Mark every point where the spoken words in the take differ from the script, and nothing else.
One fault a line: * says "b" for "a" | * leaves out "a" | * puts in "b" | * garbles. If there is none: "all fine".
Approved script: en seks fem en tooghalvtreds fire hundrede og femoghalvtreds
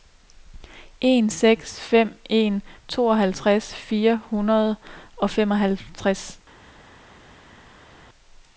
all fine